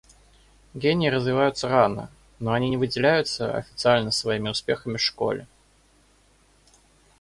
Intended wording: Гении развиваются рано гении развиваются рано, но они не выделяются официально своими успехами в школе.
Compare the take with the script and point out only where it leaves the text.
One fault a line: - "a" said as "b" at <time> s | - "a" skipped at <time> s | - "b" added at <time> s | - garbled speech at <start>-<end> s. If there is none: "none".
- "гении развиваются рано" skipped at 2.1 s